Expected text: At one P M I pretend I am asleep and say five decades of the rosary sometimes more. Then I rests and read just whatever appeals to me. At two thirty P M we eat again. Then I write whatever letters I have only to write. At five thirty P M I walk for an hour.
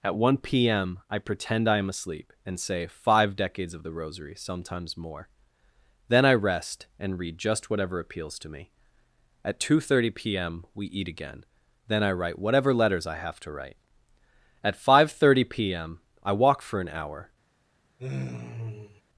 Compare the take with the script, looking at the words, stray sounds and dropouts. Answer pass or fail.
fail